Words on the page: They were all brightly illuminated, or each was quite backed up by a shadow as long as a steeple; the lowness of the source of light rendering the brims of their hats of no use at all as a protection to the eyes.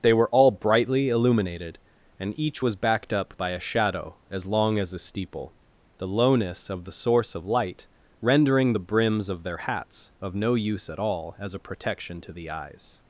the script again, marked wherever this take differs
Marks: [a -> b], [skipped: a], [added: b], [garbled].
They were all brightly illuminated, [or -> and] each was [skipped: quite] backed up by a shadow as long as a steeple; the lowness of the source of light rendering the brims of their hats of no use at all as a protection to the eyes.